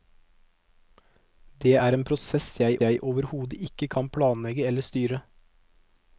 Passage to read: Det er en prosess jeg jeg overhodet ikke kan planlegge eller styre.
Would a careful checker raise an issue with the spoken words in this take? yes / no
no